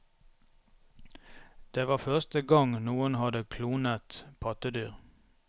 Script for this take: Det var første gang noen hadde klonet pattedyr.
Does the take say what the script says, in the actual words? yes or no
yes